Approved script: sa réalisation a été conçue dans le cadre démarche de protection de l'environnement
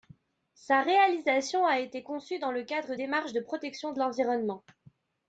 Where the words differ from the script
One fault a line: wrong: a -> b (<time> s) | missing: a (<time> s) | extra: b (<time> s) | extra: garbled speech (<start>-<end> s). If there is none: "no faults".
no faults